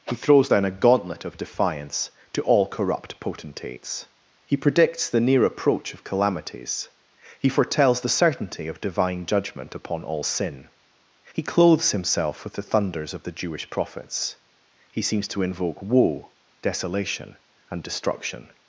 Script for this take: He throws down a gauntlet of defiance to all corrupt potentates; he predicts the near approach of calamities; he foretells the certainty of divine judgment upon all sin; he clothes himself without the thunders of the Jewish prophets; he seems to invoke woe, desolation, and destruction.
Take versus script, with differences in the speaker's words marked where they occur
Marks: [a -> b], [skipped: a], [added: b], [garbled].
He throws down a gauntlet of defiance to all corrupt potentates; he predicts the near approach of calamities; he foretells the certainty of divine judgment upon all sin; he clothes himself [without -> with] the thunders of the Jewish prophets; he seems to invoke woe, desolation, and destruction.